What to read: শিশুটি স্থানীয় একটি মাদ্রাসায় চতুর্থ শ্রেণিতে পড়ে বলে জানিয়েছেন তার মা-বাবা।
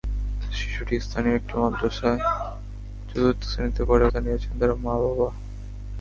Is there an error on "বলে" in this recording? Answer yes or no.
yes